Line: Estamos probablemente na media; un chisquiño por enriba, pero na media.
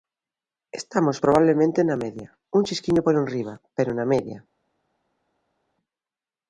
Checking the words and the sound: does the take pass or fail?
pass